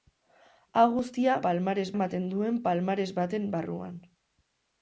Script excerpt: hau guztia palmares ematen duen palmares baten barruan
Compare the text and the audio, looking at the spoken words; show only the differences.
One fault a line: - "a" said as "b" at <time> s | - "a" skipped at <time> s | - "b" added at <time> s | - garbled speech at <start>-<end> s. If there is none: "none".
none